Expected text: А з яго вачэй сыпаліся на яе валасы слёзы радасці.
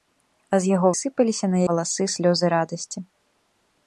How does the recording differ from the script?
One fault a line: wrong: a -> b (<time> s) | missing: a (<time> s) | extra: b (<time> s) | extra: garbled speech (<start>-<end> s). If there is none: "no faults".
missing: вачэй (0.9 s)
missing: яе (1.6 s)